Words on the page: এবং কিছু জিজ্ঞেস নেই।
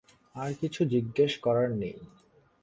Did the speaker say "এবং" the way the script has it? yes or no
no